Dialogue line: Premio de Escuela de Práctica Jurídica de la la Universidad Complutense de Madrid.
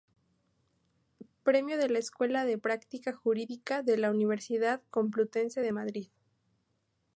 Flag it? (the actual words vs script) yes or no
yes